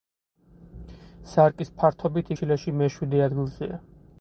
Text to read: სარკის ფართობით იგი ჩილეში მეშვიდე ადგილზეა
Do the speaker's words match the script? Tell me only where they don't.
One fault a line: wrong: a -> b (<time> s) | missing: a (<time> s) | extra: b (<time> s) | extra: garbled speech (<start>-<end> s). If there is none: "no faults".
missing: იგი (2.4 s)